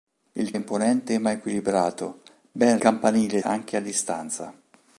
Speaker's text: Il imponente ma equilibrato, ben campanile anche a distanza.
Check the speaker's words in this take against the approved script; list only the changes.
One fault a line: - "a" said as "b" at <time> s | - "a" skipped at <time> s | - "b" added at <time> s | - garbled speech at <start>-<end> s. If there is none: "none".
none